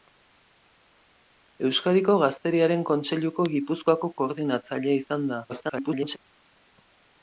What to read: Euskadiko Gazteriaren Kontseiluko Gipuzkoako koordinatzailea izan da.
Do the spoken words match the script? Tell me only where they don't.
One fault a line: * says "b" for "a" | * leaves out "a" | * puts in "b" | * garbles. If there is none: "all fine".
* garbles